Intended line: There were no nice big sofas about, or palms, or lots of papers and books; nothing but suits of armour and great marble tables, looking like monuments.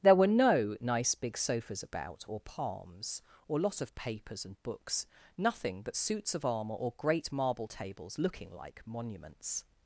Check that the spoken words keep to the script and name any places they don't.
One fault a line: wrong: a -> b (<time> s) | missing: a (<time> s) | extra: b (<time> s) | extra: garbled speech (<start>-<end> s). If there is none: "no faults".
wrong: lots -> lot (3.6 s)
wrong: and -> or (6.7 s)